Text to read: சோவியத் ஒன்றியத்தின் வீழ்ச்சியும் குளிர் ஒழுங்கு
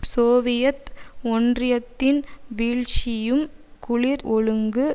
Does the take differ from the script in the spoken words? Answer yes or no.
no